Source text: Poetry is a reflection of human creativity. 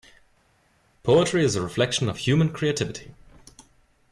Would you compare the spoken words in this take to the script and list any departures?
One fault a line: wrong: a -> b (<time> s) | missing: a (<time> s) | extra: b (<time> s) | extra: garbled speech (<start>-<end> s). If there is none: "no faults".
no faults